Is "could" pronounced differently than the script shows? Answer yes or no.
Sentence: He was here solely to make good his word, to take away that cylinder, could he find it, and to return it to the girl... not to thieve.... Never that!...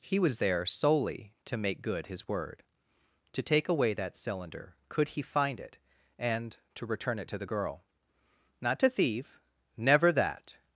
no